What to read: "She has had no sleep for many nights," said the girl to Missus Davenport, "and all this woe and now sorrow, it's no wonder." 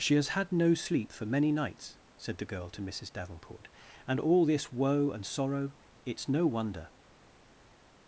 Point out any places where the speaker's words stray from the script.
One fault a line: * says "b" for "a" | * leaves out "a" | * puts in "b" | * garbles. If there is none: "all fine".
* leaves out "now"